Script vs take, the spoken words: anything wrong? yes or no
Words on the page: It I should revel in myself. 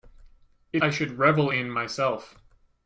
no